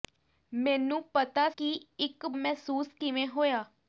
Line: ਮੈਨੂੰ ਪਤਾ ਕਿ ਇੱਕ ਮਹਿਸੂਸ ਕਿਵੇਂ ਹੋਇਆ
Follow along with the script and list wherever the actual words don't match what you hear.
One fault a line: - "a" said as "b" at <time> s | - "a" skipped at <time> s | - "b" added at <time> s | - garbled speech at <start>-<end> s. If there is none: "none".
none